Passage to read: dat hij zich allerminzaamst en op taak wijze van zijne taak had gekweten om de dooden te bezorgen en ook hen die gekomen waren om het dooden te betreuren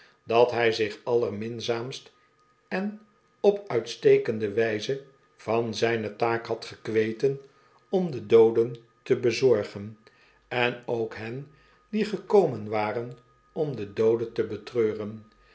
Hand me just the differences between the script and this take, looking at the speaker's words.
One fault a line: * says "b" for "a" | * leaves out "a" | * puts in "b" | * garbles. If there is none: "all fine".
* says "uitstekende" for "taak"
* says "de" for "het"